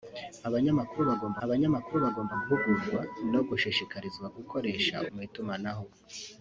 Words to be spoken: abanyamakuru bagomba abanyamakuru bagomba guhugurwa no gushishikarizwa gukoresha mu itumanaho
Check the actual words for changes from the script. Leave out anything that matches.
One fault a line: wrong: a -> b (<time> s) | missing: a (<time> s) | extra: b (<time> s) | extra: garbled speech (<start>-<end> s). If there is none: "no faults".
no faults